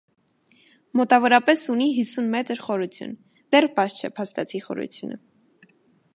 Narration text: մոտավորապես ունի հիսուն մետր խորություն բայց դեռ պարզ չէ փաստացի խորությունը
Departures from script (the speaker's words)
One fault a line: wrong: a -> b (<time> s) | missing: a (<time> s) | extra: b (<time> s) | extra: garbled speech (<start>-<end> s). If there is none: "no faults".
missing: բայց (3.1 s)